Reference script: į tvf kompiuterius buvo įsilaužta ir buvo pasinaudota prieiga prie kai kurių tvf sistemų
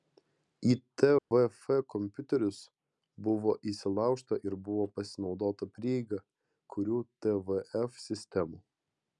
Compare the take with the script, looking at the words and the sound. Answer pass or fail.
fail